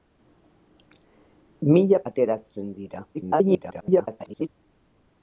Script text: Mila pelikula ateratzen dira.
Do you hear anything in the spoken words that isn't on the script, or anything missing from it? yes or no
yes